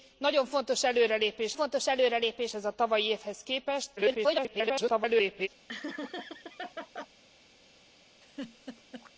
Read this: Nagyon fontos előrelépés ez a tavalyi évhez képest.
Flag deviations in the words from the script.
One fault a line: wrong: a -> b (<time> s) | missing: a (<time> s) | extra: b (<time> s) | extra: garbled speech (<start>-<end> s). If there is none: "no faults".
extra: fontos előrelépés (1.5 s)
extra: garbled speech (4.0-5.5 s)